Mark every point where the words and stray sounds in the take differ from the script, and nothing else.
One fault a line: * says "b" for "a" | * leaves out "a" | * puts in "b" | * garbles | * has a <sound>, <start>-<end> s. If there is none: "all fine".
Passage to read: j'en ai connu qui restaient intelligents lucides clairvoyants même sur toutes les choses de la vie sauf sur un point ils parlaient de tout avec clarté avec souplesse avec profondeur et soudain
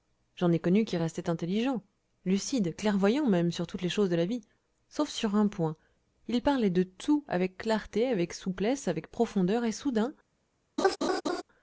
* has a laugh, 10.8-11.4 s